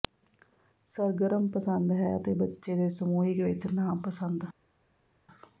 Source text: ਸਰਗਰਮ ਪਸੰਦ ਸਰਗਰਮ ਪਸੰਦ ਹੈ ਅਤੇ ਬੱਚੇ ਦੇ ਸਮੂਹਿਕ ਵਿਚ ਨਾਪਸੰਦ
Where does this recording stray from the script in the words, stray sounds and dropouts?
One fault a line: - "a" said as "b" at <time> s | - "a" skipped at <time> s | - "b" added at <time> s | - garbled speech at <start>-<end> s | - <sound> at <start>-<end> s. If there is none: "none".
- "ਸਰਗਰਮ ਪਸੰਦ" skipped at 1.9 s